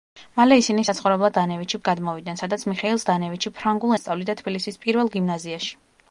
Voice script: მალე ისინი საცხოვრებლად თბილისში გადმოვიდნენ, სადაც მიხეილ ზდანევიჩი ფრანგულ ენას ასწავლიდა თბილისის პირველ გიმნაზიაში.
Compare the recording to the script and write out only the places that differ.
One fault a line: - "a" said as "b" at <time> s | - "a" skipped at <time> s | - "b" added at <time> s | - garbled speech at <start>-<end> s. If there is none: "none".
- "თბილისში" said as "ზდანევიჩი" at 1.3 s
- "ენას" skipped at 4.0 s